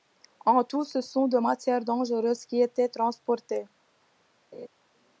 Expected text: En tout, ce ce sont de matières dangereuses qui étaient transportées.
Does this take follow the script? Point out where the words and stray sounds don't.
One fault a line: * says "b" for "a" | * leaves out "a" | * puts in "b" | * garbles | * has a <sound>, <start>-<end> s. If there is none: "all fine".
* leaves out "ce"
* has a laugh, 4.5-4.7 s